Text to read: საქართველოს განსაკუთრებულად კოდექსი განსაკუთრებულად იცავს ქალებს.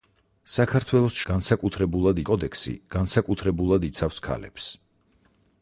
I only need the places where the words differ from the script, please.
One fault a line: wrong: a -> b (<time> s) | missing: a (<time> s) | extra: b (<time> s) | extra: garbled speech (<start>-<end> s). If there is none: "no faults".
no faults